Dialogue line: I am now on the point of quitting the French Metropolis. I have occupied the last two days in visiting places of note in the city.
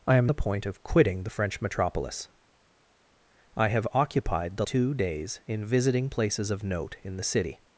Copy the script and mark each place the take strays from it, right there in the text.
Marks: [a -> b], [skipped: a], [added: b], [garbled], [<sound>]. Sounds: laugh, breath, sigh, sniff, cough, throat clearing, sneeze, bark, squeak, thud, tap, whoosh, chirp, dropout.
I am [skipped: now on] the point of quitting the French Metropolis. I have occupied the [skipped: last] two days in visiting places of note in the city.